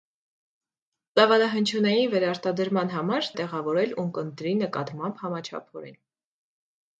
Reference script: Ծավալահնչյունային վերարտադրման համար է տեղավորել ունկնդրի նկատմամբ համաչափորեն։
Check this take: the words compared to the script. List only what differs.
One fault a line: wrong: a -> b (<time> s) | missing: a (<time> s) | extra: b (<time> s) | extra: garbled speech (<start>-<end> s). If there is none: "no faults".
no faults